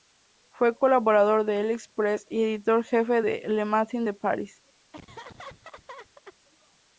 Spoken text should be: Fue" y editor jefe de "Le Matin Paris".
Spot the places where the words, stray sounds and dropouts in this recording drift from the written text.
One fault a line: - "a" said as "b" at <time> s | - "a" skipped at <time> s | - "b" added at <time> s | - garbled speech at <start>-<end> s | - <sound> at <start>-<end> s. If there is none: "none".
- "colaborador de L'Express" added at 0.8 s
- "de" added at 4.0 s
- laugh at 4.9-6.4 s